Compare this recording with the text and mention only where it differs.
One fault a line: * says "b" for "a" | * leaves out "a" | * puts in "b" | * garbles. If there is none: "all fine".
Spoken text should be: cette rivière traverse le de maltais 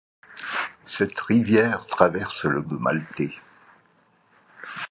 all fine